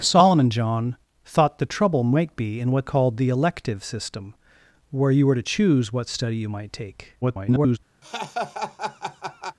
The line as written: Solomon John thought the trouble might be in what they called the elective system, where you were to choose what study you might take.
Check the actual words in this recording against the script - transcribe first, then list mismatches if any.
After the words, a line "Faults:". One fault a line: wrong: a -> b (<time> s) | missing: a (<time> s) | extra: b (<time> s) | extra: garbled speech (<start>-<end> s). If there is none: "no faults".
Solomon John thought the trouble might be in what called the elective system, where you were to choose what study you might take. [garbled]
Faults:
missing: they (2.9 s)
extra: garbled speech (7.2-7.8 s)